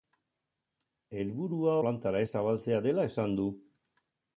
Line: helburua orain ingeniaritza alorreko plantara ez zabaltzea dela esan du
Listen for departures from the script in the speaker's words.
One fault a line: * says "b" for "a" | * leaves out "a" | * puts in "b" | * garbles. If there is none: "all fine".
* leaves out "orain ingeniaritza alorreko"